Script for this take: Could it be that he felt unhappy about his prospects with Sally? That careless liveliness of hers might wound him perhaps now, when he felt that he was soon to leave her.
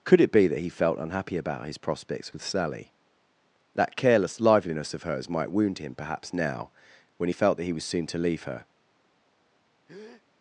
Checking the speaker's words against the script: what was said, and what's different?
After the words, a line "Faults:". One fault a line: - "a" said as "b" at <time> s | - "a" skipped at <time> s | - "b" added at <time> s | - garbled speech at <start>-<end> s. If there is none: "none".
Could it be that he felt unhappy about his prospects with Sally? That careless liveliness of hers might wound him perhaps now, when he felt that he was soon to leave her.
Faults:
none